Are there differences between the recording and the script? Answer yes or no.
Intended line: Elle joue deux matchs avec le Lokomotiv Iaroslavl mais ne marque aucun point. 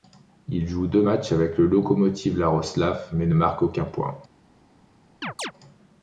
yes